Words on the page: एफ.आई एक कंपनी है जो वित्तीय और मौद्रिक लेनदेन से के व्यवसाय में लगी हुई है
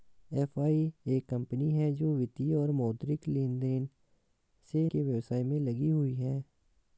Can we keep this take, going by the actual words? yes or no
yes